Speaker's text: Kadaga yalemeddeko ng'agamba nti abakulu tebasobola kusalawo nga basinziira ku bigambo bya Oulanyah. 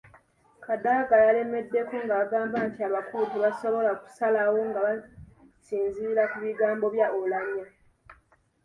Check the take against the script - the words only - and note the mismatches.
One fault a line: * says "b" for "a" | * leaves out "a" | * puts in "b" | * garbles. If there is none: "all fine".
all fine